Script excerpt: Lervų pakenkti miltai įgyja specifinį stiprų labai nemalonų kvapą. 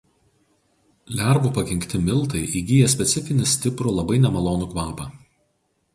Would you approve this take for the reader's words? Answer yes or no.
yes